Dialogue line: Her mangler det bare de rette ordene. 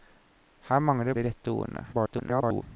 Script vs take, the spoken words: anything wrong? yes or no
yes